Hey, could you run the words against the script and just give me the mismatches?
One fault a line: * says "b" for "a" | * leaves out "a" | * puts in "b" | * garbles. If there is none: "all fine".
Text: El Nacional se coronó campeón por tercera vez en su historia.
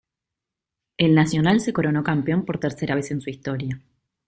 all fine